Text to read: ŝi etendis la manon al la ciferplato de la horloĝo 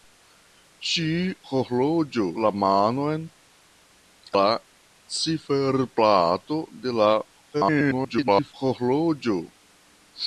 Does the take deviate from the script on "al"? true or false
true